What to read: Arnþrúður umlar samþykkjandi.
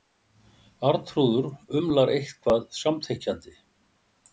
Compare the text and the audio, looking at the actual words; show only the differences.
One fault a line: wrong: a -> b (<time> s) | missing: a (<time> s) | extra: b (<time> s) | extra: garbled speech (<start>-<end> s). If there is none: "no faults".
extra: eitthvað (2.2 s)